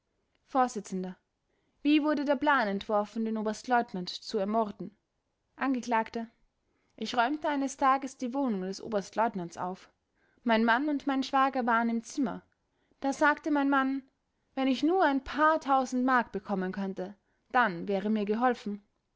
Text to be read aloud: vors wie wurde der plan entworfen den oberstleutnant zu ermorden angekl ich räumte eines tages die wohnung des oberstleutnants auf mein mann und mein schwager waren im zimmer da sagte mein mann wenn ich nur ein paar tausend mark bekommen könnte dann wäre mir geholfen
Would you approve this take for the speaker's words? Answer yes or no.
yes